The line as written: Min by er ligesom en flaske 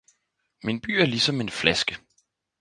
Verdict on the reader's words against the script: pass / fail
pass